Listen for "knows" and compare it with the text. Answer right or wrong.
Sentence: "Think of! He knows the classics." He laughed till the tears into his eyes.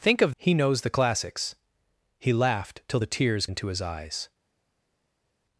right